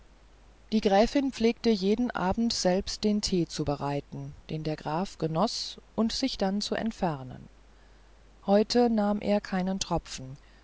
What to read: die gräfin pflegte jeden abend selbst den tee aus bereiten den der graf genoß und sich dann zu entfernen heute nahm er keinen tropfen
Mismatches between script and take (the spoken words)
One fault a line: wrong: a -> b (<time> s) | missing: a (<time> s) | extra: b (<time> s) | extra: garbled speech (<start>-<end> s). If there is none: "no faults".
wrong: aus -> zu (3.5 s)